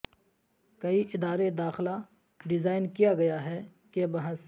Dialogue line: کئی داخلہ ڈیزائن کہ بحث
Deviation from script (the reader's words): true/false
true